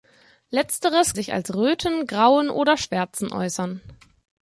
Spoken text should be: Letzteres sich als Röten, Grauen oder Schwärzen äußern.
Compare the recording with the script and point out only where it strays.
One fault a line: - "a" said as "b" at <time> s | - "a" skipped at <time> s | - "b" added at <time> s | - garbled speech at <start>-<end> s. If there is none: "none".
none